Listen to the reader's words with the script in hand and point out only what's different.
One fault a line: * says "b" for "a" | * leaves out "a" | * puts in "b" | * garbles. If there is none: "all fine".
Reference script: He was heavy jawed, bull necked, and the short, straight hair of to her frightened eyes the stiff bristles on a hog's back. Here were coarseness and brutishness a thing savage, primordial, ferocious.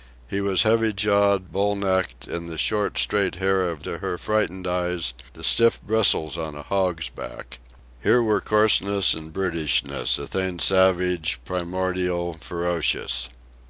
all fine